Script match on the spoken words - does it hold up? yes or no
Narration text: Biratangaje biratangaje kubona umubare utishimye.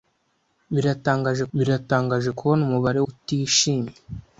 yes